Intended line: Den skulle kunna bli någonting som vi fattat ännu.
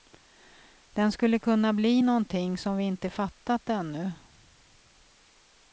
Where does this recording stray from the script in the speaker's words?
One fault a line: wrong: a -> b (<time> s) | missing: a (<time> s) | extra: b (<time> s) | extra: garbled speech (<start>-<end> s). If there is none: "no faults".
extra: inte (2.8 s)